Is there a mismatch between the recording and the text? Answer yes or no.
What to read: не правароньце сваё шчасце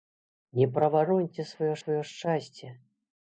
yes